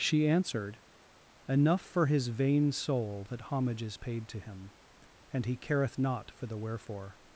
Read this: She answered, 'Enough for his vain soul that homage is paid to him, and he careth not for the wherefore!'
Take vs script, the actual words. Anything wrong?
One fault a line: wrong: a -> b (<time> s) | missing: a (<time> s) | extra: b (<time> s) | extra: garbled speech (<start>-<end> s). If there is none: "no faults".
no faults